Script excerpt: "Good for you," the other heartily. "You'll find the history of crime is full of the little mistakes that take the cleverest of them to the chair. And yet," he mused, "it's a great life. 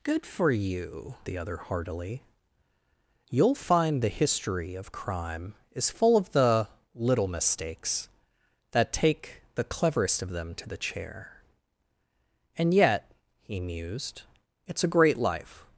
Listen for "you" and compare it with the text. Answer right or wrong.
right